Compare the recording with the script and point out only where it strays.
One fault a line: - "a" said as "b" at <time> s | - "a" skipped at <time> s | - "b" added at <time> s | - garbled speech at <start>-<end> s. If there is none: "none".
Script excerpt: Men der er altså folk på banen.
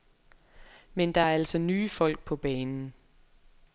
- "nye" added at 1.6 s